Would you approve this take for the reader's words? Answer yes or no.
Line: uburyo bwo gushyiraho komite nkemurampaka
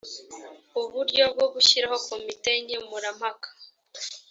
yes